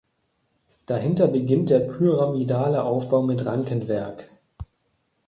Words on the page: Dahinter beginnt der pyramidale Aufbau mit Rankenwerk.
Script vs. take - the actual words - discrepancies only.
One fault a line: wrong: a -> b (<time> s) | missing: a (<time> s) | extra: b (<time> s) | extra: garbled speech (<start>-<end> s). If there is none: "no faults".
no faults